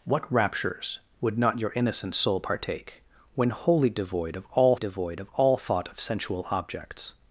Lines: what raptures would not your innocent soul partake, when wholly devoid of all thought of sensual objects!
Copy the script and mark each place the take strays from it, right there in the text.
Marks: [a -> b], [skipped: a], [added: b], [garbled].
what raptures would not your innocent soul partake, when wholly devoid of all [added: devoid of all] thought of sensual objects!